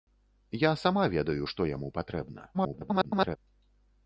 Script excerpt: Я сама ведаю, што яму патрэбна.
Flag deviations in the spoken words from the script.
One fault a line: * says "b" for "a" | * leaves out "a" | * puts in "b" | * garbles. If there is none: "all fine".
* garbles